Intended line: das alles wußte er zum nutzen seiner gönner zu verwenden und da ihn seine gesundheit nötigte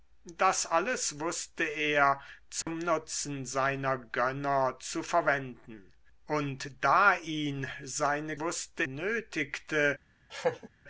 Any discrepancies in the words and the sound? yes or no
yes